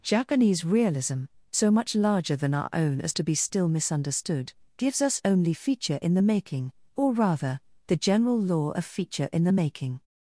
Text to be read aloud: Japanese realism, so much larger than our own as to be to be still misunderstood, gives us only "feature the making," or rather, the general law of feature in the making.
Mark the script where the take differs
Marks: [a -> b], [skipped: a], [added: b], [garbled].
Japanese realism, so much larger than our own as to be [skipped: to be] still misunderstood, gives us only "feature [added: in] the making," or rather, the general law of feature in the making.